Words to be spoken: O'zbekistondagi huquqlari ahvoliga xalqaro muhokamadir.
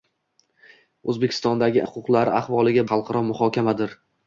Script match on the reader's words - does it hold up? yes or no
yes